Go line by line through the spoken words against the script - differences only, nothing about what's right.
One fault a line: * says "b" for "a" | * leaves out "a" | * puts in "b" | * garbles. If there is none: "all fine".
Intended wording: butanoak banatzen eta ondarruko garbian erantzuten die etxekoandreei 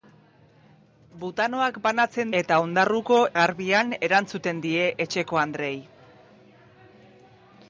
all fine